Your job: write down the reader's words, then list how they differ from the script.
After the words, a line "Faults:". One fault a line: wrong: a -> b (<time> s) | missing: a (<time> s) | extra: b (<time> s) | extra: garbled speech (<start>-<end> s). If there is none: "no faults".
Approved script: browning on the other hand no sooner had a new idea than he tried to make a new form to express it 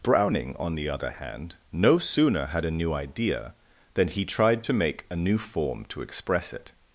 browning on the other hand no sooner had a new idea than he tried to make a new form to express it
Faults:
no faults